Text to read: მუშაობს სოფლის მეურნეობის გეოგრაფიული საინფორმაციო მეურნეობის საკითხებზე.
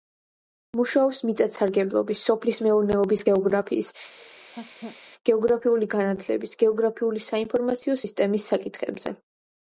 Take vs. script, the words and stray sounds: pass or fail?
fail